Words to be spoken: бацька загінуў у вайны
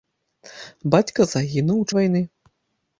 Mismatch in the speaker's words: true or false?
false